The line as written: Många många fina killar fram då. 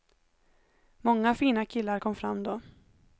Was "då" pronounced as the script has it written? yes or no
yes